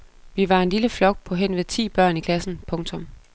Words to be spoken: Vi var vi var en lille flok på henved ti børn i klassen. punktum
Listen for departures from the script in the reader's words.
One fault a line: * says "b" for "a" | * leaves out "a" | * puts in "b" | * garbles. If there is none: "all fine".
* leaves out "vi var"